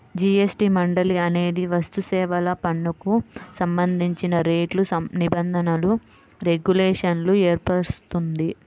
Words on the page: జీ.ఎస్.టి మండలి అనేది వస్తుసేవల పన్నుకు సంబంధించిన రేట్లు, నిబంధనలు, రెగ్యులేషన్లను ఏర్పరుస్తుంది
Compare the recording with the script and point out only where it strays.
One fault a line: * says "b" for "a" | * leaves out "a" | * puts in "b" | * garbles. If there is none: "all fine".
all fine